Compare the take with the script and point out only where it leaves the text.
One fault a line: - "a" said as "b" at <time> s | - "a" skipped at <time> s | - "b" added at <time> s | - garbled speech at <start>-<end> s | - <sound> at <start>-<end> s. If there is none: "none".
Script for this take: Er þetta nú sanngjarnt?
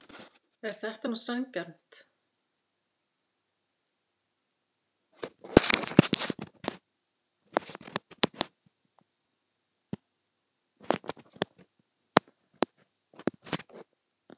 none